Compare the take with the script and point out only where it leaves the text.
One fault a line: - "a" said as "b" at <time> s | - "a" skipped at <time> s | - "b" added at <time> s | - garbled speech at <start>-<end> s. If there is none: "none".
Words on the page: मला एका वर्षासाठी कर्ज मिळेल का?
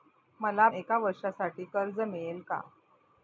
none